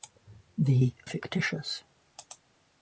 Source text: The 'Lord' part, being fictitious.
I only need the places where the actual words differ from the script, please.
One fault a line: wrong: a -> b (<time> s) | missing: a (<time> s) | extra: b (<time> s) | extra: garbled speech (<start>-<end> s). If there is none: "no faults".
missing: Lord part being (0.9 s)